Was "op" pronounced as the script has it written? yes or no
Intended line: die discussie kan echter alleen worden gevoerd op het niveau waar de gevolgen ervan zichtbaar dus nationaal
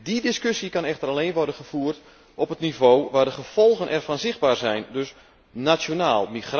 yes